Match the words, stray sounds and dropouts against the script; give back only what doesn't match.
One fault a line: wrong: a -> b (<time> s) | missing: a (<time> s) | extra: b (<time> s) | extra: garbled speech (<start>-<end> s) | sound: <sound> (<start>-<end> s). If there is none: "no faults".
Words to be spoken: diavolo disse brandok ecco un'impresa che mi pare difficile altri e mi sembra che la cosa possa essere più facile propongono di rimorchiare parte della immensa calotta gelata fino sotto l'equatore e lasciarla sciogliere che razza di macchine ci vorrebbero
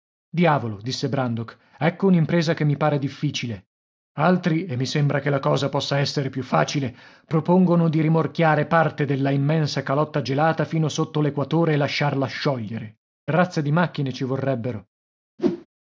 missing: che (13.0 s)
sound: whoosh (15.4-15.7 s)